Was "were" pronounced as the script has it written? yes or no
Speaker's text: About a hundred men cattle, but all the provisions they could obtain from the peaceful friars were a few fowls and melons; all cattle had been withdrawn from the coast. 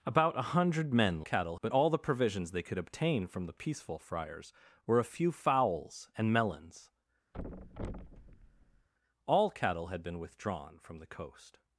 yes